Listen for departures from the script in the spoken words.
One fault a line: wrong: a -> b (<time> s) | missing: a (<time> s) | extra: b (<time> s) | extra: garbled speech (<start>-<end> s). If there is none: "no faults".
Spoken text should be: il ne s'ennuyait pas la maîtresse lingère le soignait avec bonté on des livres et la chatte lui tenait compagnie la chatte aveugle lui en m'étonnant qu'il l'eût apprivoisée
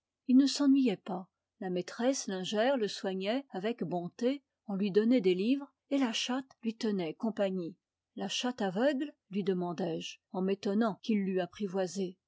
extra: lui donnait (4.7 s)
extra: demandai je (9.4 s)